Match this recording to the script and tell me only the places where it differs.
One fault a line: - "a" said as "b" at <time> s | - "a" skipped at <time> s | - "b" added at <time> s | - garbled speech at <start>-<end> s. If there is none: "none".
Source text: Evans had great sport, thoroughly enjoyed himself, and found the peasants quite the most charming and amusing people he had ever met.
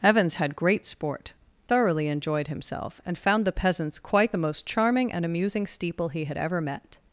- "people" said as "steeple" at 5.7 s